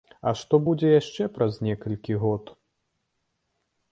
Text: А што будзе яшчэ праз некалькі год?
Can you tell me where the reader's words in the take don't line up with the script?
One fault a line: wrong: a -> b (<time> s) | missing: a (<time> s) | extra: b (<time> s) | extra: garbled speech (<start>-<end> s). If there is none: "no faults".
no faults